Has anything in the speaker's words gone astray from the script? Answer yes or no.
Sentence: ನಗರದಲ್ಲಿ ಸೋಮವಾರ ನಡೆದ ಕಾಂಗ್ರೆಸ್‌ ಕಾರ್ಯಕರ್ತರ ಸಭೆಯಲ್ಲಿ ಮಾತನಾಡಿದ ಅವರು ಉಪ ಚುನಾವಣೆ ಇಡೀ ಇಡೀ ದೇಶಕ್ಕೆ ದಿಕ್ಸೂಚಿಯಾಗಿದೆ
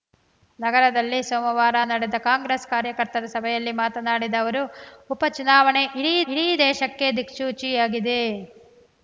no